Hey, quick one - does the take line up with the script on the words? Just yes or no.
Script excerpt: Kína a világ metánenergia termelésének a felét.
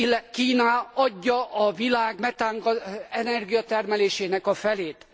no